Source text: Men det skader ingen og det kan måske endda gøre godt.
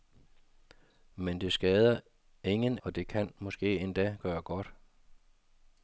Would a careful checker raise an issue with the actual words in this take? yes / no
no